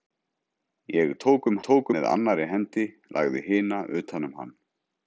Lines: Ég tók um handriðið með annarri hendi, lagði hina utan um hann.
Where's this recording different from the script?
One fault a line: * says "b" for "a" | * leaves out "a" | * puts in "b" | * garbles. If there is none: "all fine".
* says "tók" for "handriðið"